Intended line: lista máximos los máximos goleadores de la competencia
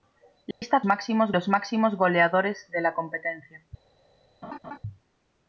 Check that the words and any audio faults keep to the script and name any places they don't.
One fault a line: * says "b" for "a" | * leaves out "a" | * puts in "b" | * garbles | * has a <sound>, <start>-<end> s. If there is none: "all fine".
* has a dropout, 0.5-0.6 s
* has a laugh, 4.4-4.8 s